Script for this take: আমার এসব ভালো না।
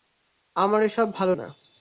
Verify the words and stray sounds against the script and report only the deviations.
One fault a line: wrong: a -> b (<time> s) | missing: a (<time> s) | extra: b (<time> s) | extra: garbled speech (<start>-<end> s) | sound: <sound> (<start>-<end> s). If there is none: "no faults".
no faults